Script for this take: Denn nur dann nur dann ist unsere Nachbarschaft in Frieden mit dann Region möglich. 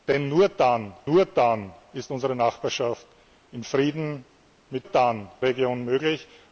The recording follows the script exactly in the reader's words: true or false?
true